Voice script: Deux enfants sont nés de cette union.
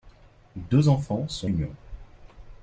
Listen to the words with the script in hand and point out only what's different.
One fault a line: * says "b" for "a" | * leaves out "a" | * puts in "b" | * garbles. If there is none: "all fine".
* leaves out "nés de cette"